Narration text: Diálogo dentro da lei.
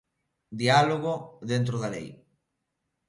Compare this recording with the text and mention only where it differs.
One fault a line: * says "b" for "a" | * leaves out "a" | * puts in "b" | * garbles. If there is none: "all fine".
all fine